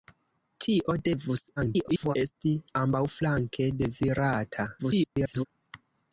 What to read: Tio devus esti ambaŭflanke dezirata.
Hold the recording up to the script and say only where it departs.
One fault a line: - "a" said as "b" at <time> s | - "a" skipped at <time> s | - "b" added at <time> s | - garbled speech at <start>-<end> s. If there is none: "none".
- garbled speech at 1.6-2.2 s
- garbled speech at 4.8-5.5 s